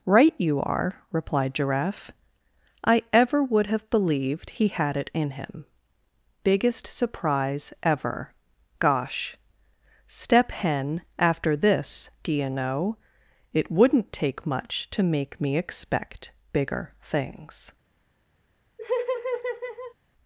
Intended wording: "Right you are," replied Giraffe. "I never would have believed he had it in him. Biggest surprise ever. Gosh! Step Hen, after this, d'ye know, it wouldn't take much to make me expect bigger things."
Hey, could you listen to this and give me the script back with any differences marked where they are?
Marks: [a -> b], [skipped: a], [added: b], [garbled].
"Right you are," replied Giraffe. "I [never -> ever] would have believed he had it in him. Biggest surprise ever. Gosh! Step Hen, after this, d'ye know, it wouldn't take much to make me expect bigger things."